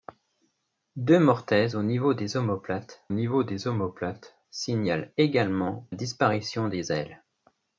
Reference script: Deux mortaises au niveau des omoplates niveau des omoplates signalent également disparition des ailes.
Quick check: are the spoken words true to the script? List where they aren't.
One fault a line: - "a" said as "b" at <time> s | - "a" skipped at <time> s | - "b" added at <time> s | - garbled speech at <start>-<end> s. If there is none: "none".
none